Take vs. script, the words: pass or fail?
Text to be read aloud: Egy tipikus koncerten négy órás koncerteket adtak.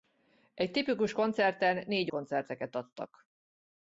fail